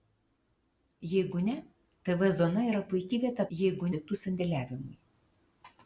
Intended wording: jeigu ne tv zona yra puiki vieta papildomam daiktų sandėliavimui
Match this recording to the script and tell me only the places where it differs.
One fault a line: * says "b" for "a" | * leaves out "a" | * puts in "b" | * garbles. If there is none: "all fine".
* says "jeigu" for "papildomam"